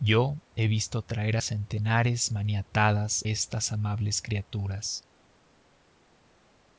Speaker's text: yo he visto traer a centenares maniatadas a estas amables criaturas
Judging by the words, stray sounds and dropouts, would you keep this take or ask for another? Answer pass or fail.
fail